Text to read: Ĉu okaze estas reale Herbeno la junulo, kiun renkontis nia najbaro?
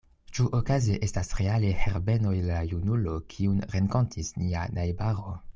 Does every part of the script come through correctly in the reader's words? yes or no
yes